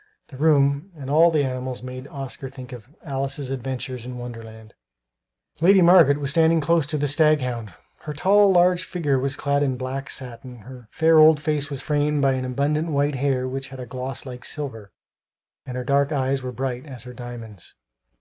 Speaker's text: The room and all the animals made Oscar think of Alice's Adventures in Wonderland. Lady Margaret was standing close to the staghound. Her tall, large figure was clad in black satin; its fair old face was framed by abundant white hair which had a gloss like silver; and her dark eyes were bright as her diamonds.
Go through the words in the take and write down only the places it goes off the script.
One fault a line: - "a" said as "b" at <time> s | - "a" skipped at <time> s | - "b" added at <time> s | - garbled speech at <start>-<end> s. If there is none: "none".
- "its" said as "her" at 10.6 s